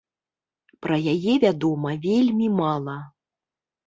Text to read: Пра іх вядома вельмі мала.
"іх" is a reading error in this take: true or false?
true